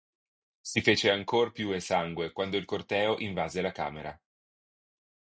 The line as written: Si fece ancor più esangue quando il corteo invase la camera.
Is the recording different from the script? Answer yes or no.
no